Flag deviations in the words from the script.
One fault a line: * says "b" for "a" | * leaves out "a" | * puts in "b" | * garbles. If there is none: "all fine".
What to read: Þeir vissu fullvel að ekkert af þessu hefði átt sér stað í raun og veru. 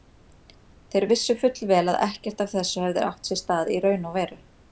all fine